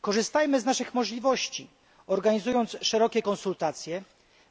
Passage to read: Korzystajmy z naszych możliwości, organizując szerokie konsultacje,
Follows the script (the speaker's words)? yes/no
yes